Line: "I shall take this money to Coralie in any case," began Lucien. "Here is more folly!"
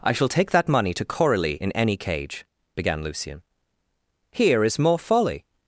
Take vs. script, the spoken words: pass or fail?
fail